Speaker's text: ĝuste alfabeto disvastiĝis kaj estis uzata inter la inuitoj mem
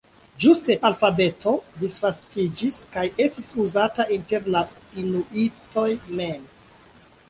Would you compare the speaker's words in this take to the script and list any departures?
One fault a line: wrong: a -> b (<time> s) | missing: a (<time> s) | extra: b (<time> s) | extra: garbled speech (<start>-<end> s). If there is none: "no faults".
no faults